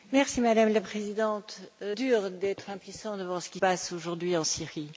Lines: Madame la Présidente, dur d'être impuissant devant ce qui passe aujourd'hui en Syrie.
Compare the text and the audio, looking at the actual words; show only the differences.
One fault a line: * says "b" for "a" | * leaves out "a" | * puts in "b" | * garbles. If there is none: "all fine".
all fine